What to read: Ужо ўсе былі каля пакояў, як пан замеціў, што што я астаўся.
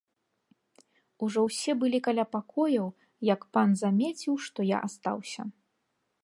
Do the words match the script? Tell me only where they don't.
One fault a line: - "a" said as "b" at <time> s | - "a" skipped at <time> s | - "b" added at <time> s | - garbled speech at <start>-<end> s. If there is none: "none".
- "што" skipped at 4.6 s